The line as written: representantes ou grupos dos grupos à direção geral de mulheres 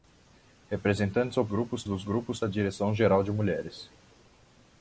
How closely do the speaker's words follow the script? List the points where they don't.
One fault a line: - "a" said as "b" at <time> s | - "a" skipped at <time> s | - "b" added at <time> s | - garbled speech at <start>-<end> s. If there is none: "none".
none